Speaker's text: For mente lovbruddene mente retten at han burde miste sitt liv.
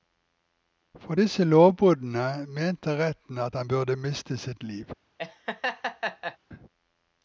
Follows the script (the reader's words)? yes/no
no